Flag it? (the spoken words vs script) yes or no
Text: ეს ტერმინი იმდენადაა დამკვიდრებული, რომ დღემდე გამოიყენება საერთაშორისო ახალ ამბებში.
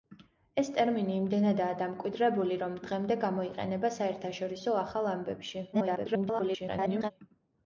yes